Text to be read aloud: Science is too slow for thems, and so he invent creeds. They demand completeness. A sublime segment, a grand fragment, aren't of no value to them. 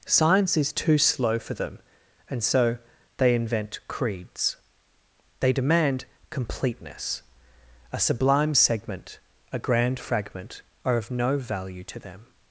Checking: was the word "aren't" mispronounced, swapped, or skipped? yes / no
yes